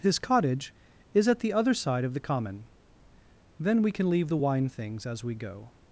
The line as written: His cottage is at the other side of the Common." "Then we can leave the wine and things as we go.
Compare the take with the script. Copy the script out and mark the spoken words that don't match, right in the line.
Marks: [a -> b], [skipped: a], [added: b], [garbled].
His cottage is at the other side of the Common." "Then we can leave the wine [skipped: and] things as we go.